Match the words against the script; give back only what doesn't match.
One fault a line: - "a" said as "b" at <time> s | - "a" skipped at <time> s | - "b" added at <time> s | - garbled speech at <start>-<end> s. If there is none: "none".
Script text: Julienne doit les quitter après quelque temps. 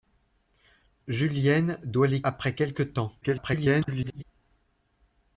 - "quitter" skipped at 2.2 s
- garbled speech at 3.2-4.2 s